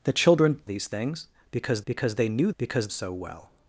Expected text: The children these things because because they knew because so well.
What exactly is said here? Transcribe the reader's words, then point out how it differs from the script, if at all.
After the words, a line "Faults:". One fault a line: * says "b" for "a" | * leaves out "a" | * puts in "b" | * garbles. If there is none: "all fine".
The children these things because because they knew because so well.
Faults:
all fine